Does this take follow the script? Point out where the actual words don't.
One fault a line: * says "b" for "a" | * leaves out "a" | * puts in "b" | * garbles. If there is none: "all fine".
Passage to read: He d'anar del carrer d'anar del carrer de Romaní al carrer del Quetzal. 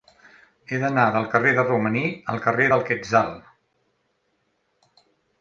* leaves out "d'anar del carrer"